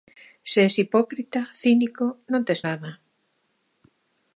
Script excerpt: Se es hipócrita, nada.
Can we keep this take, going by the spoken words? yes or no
no